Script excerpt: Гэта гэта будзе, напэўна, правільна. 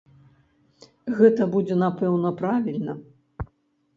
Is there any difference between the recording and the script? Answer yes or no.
yes